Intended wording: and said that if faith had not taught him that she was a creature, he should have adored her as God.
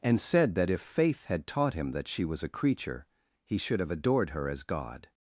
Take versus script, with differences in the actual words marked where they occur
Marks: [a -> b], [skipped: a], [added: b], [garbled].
and said that if faith had [skipped: not] taught him that she was a creature, he should have adored her as God.